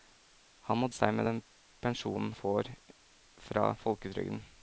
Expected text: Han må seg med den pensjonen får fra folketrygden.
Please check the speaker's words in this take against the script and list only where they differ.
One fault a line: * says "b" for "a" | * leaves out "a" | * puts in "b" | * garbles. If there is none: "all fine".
all fine